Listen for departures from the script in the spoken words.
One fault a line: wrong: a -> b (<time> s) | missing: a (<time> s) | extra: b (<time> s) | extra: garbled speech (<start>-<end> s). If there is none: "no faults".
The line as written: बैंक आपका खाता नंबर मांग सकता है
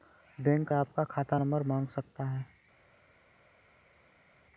no faults